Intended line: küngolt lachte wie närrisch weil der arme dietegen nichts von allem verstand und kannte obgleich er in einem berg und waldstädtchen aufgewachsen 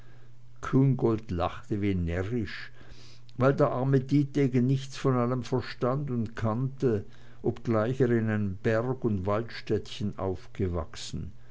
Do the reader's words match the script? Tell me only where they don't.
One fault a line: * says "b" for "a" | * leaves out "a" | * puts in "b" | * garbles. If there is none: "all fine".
all fine